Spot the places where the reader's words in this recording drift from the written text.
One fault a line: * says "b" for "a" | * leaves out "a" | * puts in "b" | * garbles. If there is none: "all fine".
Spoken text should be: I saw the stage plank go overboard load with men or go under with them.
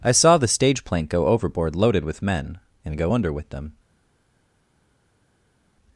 * says "loaded" for "load"
* says "and" for "or"